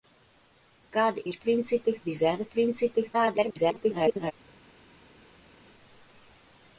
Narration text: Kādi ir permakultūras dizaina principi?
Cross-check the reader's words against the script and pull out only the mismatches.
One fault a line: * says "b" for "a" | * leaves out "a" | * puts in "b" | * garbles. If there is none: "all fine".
* says "principi" for "permakultūras"
* garbles